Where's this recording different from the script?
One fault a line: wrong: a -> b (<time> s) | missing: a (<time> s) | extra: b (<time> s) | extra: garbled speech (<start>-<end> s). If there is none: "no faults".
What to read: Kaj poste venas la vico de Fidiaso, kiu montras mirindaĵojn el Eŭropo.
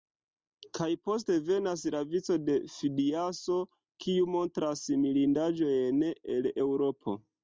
no faults